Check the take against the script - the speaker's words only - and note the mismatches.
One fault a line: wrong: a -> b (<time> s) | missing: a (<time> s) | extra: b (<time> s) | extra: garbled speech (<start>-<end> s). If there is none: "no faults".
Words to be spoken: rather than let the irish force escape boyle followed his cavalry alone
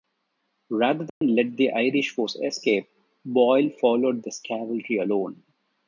no faults